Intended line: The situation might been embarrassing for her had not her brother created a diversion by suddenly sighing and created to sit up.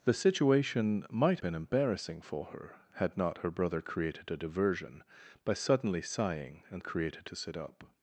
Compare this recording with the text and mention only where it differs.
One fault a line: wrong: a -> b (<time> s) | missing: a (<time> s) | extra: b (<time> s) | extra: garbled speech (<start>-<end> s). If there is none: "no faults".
no faults